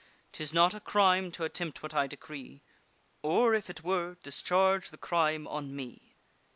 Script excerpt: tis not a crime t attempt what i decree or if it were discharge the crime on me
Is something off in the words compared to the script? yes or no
no